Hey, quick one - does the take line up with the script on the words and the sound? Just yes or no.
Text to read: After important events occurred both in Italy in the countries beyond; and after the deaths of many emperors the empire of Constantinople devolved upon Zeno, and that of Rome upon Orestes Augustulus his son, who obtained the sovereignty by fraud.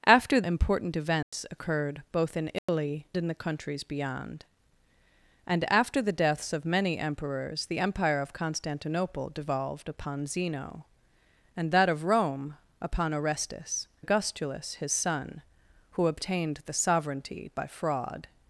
no